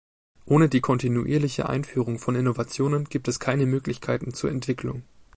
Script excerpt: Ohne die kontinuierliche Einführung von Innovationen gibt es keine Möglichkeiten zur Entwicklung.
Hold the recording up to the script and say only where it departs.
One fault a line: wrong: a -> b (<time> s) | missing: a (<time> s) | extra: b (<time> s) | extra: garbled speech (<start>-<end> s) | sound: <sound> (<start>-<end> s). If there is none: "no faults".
no faults